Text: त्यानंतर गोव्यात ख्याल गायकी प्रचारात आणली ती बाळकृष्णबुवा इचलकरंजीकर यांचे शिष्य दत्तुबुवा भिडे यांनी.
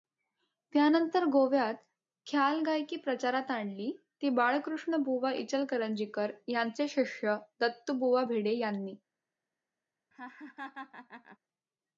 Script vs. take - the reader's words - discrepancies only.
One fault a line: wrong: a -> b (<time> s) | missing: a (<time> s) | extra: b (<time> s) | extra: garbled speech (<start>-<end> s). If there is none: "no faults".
no faults